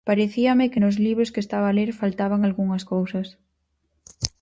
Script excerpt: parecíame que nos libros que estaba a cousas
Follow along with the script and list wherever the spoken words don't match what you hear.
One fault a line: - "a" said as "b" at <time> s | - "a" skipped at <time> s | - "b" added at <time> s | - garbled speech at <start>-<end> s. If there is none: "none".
- "ler faltaban algunhas" added at 1.7 s